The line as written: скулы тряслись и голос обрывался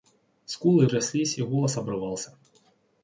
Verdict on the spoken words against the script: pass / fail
pass